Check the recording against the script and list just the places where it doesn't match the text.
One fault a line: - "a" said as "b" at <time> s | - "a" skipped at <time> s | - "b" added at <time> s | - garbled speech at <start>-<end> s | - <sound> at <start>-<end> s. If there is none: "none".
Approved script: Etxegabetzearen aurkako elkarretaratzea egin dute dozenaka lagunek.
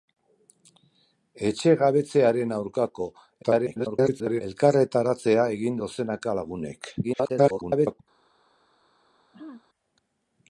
- garbled speech at 3.4-4.4 s
- "dute" skipped at 5.8 s
- garbled speech at 7.0-8.0 s
- throat clearing at 9.3-9.6 s